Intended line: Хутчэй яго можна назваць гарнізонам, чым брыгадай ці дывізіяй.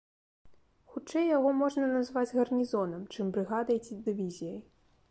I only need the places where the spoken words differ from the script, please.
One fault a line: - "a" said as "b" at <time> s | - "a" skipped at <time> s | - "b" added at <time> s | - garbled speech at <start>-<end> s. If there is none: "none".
none